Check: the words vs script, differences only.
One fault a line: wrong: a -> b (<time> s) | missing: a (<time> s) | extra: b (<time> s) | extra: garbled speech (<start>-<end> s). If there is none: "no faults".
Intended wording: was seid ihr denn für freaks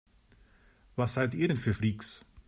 no faults